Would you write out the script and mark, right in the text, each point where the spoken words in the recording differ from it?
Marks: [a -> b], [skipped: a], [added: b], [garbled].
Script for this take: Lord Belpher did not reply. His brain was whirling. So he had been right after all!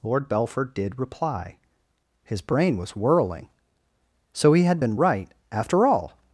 Lord Belpher did [skipped: not] reply. His brain was whirling. So he had been right after all!